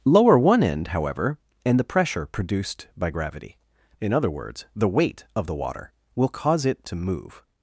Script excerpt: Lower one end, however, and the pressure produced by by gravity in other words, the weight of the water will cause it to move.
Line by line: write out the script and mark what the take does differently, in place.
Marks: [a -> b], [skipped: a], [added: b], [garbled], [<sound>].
Lower one end, however, and the pressure produced by [skipped: by] gravity in other words, the weight of the water will cause it to move.